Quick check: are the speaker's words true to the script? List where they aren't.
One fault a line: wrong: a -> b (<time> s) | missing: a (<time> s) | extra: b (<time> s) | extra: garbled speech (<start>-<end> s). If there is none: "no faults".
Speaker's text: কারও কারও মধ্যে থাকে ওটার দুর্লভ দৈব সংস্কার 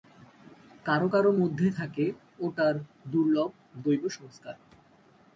no faults